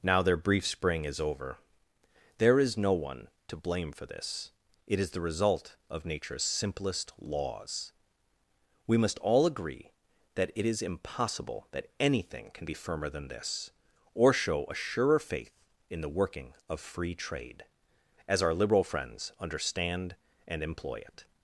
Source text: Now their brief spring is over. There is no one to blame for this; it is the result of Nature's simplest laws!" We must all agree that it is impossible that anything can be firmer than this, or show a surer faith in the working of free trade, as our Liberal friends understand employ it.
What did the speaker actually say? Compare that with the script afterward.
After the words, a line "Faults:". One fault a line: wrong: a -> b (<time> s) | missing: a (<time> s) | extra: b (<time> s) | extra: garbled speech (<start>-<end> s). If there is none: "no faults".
Now their brief spring is over. There is no one to blame for this; it is the result of Nature's simplest laws!" We must all agree that it is impossible that anything can be firmer than this, or show a surer faith in the working of free trade, as our Liberal friends understand and employ it.
Faults:
extra: and (20.4 s)